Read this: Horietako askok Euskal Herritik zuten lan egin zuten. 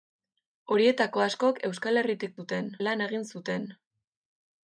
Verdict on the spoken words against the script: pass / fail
pass